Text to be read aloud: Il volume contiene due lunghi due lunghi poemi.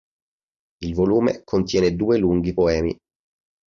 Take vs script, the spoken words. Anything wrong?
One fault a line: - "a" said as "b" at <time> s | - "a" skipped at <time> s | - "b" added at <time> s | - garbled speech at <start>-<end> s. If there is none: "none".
- "due lunghi" skipped at 2.5 s